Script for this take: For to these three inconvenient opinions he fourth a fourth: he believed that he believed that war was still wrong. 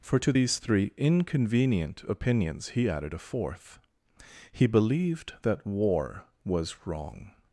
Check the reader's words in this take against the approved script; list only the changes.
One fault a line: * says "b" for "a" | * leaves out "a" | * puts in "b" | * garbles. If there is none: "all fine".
* says "added" for "fourth"
* leaves out "he believed that"
* leaves out "still"